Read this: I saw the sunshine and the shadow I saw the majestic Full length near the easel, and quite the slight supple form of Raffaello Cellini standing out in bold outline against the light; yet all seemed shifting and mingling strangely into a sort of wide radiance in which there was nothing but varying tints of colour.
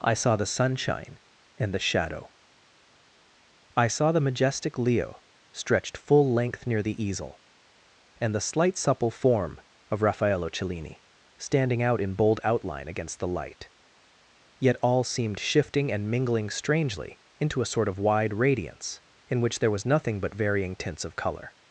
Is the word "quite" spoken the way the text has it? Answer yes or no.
no